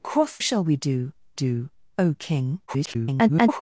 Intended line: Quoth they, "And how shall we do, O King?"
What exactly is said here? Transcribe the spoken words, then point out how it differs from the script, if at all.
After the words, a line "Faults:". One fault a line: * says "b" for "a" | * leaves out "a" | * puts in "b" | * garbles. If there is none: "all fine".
Quoth shall we do do, O King?" [garbled]
Faults:
* leaves out "they And how"
* puts in "do"
* garbles